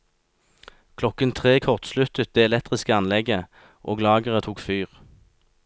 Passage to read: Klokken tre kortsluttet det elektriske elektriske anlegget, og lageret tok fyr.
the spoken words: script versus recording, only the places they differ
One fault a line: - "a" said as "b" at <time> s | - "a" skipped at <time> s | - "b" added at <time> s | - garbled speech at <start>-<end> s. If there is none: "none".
- "elektriske" skipped at 2.9 s